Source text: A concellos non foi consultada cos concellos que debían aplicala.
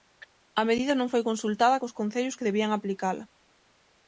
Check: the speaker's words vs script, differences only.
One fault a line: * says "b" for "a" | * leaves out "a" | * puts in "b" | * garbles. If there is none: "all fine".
* says "medida" for "concellos"